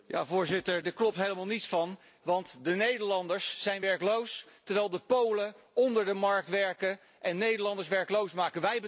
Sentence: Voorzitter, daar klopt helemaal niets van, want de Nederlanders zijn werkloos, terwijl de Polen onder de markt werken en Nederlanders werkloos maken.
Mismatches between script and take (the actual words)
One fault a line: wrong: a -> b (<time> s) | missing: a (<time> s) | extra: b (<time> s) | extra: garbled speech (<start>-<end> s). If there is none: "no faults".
no faults